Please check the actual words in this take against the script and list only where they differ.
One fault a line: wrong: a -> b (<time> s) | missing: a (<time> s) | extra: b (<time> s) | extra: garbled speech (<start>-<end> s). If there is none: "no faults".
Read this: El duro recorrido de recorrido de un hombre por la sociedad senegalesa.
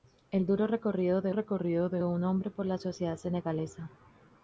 no faults